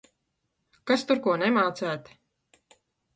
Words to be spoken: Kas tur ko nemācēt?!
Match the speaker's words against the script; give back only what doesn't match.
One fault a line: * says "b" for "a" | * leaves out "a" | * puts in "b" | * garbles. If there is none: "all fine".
all fine